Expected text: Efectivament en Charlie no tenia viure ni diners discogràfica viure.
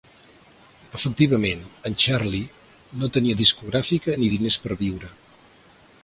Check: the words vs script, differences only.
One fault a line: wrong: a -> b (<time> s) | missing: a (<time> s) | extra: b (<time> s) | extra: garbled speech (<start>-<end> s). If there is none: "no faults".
wrong: viure -> discogràfica (3.4 s)
wrong: discogràfica -> per (4.7 s)